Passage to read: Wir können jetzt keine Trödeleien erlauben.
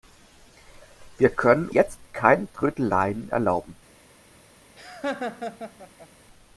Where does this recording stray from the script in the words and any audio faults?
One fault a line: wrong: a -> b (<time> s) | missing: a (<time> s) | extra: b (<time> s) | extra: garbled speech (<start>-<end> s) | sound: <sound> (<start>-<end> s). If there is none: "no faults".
sound: laugh (4.8-6.1 s)